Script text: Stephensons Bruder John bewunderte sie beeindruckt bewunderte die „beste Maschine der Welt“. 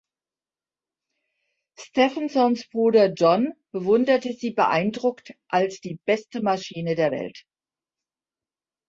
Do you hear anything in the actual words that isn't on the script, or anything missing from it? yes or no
yes